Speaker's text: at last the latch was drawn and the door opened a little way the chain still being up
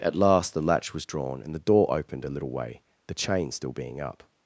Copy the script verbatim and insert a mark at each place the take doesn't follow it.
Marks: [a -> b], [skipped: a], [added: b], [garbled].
at last the latch was drawn and the door opened a little way the chain still being up